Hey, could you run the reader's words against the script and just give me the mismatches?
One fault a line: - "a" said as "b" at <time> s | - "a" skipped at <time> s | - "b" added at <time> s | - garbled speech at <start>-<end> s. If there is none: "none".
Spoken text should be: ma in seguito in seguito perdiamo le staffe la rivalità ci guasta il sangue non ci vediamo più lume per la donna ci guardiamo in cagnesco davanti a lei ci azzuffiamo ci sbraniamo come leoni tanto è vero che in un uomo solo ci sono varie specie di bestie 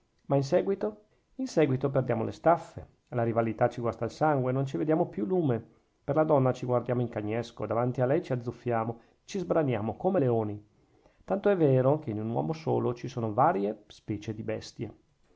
none